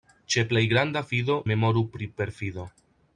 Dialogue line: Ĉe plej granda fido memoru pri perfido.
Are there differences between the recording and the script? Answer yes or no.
no